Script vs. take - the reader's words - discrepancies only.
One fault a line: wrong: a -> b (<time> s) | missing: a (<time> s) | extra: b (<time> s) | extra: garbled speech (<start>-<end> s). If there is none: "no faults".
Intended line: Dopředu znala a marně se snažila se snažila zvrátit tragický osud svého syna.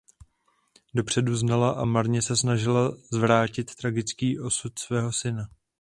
missing: se snažila (3.0 s)